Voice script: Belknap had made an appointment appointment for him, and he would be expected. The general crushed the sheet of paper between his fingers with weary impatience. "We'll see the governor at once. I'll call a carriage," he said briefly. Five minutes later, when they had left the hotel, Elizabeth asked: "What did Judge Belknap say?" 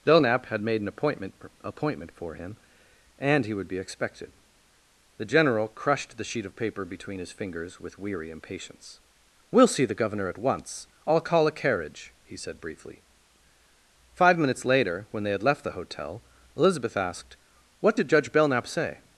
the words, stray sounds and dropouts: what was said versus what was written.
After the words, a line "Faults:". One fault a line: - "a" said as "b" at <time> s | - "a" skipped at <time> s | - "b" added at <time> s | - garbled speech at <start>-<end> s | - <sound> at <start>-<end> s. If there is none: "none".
Belknap had made an appointment appointment for him, and he would be expected. The general crushed the sheet of paper between his fingers with weary impatience. "We'll see the governor at once. I'll call a carriage," he said briefly. Five minutes later, when they had left the hotel, Elizabeth asked: "What did Judge Belknap say?"
Faults:
none